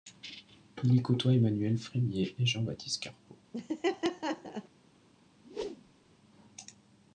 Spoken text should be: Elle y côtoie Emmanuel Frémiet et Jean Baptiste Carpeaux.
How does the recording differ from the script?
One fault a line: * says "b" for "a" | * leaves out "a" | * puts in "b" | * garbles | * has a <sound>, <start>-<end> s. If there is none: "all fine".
* says "Il" for "Elle"
* has a laugh, 3.5-4.7 s
* has a whoosh, 5.4-6.1 s